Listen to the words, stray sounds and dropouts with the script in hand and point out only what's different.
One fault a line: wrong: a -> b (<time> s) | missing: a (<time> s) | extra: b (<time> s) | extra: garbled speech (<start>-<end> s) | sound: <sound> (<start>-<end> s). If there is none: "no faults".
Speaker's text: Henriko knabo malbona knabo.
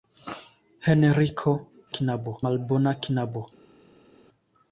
no faults